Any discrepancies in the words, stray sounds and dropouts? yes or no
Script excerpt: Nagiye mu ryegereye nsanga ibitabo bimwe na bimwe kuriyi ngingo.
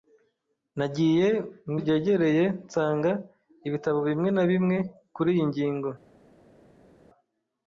no